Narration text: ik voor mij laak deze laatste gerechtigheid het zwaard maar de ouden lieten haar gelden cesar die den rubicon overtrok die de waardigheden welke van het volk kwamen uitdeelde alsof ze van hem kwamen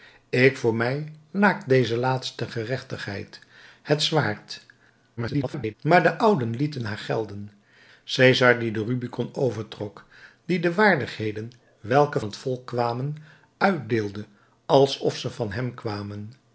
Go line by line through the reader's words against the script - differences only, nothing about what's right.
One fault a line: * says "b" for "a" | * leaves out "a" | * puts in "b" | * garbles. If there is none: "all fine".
* garbles
* leaves out "van"